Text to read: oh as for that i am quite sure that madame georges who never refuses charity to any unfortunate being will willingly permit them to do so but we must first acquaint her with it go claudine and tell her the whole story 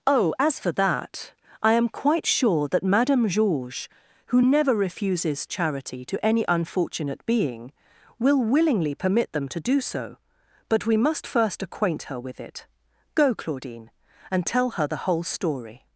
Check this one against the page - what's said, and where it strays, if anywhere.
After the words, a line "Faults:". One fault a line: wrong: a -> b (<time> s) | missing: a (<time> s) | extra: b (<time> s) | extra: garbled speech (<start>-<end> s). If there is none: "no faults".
oh as for that i am quite sure that madame georges who never refuses charity to any unfortunate being will willingly permit them to do so but we must first acquaint her with it go claudine and tell her the whole story
Faults:
no faults